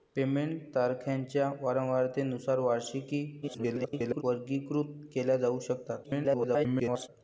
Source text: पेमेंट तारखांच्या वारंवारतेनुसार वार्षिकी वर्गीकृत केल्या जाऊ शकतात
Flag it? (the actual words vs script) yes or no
yes